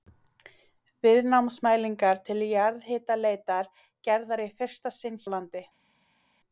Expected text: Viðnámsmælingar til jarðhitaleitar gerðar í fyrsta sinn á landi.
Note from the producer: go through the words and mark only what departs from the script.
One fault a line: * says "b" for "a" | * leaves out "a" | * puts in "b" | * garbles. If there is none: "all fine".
all fine